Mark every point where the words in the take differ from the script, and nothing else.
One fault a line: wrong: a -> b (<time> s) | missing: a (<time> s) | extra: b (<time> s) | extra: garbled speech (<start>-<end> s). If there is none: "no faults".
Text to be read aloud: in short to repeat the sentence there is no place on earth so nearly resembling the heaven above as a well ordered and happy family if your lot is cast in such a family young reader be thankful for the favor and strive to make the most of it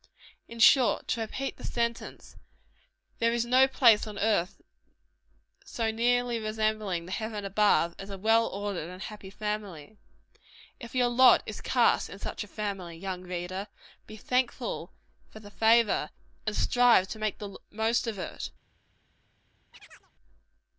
no faults